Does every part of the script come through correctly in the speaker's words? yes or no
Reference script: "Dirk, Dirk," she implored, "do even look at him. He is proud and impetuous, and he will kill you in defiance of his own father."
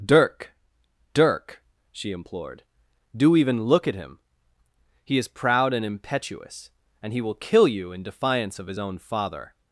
yes